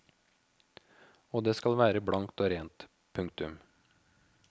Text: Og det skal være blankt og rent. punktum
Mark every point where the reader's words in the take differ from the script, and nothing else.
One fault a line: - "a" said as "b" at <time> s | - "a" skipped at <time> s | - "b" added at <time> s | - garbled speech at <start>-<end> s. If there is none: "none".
none